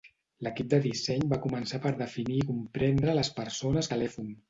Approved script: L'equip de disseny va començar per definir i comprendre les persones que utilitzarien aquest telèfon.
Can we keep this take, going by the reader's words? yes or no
no